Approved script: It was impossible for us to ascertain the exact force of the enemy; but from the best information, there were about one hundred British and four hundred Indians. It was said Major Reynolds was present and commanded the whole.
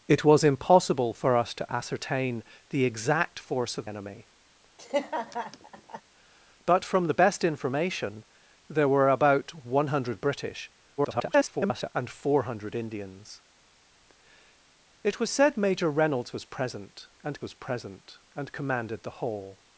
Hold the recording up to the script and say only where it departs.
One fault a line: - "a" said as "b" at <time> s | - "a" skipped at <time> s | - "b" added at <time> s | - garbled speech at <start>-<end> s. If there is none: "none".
- "the" skipped at 3.9 s
- garbled speech at 11.0-11.9 s
- "was present and" added at 17.4 s